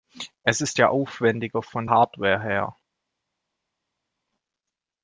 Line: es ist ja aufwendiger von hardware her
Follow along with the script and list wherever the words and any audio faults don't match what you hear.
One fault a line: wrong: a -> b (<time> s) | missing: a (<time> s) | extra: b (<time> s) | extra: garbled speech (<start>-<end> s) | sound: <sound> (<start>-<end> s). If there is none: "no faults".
no faults